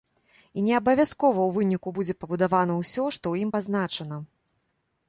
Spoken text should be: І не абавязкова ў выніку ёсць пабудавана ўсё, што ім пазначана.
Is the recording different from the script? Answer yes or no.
yes